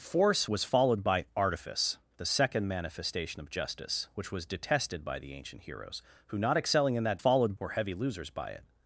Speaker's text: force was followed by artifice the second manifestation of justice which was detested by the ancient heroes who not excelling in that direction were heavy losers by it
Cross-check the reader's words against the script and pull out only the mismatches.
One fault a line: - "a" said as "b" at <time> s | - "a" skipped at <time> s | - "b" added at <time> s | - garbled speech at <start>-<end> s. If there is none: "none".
- "direction" said as "followed" at 7.2 s